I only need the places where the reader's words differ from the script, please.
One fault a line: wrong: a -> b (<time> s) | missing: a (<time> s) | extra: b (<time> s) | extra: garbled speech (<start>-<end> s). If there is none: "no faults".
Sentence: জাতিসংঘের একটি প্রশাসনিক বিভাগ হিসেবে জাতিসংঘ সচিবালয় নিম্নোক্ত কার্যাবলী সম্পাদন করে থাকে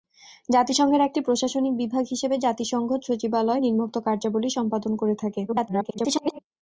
extra: garbled speech (5.5-6.4 s)